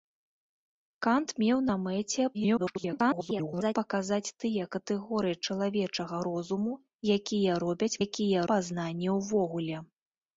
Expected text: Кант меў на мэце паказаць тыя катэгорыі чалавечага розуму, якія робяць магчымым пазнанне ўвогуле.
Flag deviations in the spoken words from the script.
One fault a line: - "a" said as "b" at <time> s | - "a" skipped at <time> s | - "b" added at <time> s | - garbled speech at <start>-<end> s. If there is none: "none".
- garbled speech at 2.3-3.8 s
- "магчымым" said as "якія" at 8.1 s